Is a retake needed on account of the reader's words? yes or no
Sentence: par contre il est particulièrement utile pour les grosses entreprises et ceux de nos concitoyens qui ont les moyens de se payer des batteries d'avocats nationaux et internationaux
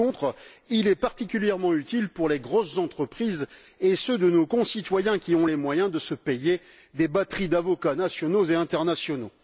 no